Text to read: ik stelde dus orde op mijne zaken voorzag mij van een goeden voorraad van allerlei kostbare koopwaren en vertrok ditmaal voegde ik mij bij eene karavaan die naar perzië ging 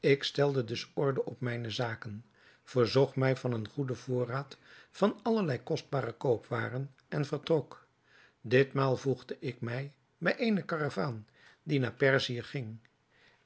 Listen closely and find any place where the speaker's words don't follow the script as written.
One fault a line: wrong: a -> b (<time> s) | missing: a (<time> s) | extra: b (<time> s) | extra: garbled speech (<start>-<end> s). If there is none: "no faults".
no faults